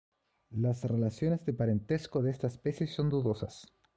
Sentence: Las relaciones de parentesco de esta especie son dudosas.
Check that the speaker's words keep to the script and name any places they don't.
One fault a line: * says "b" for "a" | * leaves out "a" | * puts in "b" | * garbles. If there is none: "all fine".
all fine